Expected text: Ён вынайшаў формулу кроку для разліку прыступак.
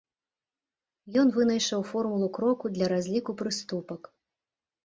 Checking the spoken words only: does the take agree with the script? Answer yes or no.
yes